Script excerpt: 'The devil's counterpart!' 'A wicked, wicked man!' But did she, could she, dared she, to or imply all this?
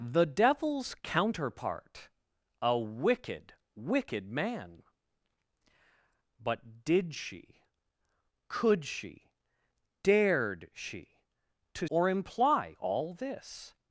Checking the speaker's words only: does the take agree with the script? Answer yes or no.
yes